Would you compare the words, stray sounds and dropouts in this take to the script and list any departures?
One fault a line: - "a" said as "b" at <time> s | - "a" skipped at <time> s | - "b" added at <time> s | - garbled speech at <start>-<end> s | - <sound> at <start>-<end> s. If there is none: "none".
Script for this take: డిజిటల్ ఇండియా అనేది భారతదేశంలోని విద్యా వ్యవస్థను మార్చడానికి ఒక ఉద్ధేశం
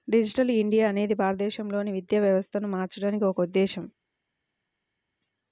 none